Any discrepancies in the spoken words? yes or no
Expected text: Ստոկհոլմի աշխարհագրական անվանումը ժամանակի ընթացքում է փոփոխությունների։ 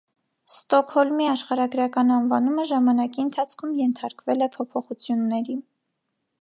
yes